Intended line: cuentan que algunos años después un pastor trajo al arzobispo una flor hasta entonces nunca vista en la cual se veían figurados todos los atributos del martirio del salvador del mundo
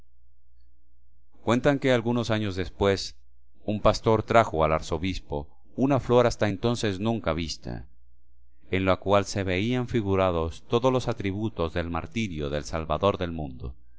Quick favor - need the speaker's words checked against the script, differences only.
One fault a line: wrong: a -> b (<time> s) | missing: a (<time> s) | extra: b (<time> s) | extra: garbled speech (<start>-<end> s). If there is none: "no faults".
no faults